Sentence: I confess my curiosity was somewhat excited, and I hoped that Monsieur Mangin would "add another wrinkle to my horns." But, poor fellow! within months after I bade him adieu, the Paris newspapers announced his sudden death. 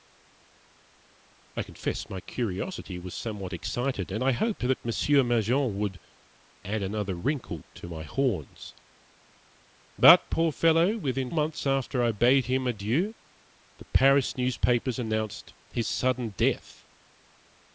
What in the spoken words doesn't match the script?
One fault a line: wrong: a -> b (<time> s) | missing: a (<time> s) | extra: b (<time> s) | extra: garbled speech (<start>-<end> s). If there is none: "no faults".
no faults